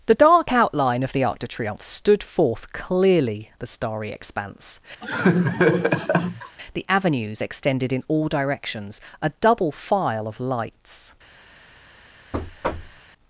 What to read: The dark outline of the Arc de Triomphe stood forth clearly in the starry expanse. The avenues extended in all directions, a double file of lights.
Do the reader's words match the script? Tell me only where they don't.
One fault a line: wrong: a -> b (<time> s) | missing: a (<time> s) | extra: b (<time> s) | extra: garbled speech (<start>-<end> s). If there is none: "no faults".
missing: in (3.5 s)